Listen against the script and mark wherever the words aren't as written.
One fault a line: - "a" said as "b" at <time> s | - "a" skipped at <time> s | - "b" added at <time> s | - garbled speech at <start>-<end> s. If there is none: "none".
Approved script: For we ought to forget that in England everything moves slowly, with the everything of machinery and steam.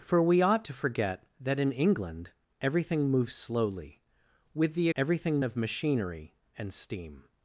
none